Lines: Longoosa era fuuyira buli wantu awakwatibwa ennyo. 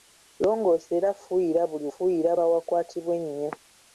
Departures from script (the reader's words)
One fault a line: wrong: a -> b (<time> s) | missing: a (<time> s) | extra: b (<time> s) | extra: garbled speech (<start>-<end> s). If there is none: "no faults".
wrong: wantu -> fuuyira (1.9 s)